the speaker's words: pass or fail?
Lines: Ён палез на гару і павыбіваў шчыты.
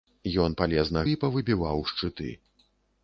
fail